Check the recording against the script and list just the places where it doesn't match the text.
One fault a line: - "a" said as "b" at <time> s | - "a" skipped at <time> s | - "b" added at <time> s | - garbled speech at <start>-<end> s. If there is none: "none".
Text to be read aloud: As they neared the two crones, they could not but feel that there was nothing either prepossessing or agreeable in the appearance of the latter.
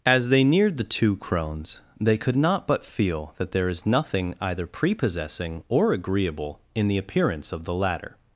- "was" said as "is" at 3.7 s